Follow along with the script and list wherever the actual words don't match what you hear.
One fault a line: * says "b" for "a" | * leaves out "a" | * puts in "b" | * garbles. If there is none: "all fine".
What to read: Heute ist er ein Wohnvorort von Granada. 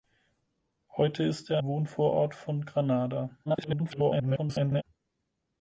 * leaves out "ein"
* garbles